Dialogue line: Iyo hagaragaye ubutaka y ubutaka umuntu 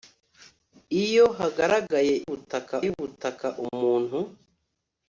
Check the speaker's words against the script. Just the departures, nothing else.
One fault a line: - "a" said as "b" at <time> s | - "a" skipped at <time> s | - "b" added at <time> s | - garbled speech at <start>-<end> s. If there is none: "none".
none